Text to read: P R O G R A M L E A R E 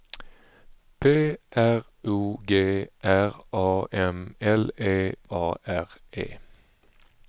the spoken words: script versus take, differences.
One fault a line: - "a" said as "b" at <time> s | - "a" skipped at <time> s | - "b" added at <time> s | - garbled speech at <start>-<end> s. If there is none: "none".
none